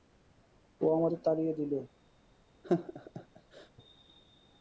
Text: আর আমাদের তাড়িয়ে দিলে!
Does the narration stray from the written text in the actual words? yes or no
yes